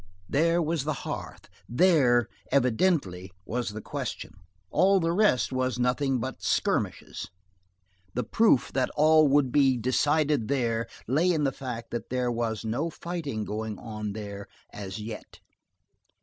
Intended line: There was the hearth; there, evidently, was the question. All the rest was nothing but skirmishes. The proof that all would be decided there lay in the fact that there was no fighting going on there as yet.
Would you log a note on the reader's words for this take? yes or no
no